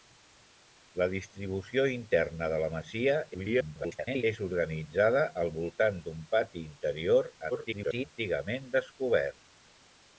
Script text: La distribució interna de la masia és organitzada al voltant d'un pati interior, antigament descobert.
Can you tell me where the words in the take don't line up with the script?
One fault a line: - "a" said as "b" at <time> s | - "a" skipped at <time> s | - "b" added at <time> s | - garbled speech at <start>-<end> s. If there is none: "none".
- garbled speech at 3.3-4.2 s
- garbled speech at 7.5-8.0 s